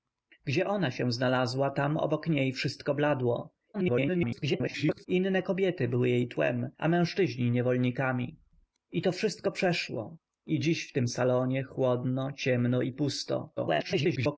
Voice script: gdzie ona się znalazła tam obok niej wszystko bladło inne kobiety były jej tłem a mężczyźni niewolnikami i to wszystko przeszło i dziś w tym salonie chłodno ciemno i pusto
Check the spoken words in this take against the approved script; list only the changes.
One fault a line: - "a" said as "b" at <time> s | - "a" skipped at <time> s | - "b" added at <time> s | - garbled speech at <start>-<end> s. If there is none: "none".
- garbled speech at 3.7-5.1 s
- garbled speech at 13.6-14.4 s